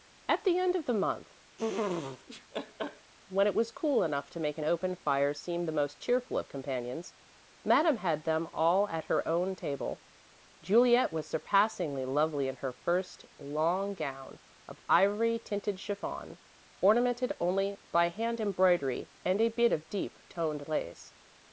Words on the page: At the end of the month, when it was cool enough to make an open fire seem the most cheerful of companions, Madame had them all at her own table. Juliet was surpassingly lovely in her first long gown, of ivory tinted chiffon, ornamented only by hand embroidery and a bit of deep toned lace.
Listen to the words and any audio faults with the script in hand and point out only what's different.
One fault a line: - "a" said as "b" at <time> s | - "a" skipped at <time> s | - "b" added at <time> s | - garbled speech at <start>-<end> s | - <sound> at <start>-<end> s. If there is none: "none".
- laugh at 1.6-3.1 s